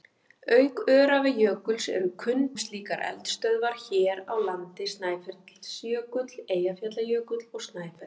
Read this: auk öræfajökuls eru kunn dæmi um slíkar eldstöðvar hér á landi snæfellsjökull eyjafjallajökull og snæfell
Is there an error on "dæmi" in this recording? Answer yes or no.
yes